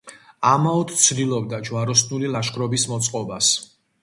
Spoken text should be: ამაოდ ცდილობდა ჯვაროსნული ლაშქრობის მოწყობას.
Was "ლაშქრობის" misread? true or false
false